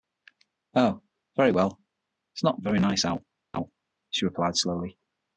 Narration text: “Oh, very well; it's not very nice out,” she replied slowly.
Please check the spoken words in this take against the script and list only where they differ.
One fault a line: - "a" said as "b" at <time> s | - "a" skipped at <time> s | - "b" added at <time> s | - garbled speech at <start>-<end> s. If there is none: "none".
none